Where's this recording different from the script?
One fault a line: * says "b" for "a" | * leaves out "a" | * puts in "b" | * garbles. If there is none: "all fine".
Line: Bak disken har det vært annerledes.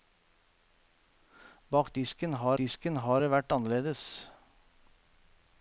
* puts in "disken har"